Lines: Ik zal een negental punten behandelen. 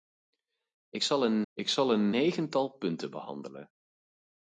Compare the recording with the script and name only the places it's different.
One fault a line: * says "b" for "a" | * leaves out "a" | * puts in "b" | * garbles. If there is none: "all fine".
* puts in "ik zal een"